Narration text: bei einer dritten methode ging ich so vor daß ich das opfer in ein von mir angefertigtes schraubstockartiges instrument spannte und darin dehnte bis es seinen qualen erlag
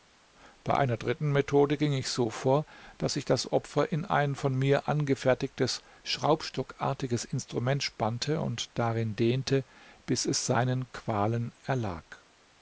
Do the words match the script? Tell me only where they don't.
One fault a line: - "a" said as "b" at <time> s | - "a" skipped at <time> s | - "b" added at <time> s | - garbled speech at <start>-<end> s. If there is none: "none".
none